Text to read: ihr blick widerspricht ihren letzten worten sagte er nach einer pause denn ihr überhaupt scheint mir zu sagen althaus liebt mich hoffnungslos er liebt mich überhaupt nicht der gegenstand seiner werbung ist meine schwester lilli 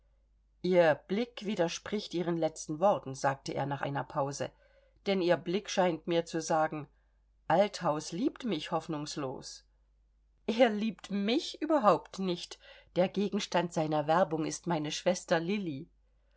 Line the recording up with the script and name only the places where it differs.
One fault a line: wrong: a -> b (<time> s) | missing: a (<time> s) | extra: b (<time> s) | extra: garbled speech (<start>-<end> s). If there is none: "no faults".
wrong: überhaupt -> blick (5.4 s)